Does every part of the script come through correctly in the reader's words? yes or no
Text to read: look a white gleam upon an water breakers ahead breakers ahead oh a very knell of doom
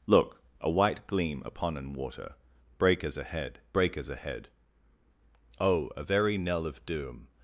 yes